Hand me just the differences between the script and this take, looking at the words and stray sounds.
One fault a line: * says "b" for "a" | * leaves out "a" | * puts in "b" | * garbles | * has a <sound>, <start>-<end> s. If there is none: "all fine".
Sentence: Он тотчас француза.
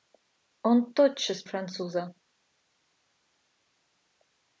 all fine